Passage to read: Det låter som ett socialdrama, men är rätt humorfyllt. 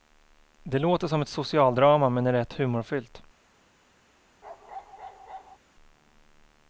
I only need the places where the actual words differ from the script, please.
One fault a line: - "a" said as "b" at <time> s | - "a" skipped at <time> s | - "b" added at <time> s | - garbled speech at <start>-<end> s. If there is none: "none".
none